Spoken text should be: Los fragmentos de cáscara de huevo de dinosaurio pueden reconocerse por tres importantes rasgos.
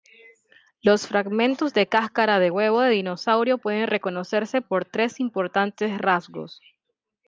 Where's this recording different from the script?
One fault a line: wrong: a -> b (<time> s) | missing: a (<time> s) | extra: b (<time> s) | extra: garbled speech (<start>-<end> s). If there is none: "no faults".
no faults